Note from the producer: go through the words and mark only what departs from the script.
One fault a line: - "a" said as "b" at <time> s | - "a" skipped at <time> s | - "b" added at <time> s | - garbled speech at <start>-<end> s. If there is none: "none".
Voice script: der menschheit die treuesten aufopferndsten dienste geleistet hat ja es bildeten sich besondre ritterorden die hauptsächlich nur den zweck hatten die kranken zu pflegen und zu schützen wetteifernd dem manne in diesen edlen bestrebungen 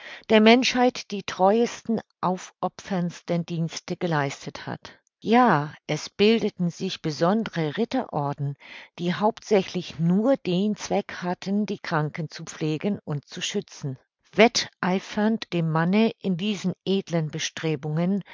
none